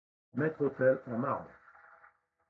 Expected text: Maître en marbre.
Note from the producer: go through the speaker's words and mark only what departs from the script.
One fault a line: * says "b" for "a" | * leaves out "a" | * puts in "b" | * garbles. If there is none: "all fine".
* puts in "autel"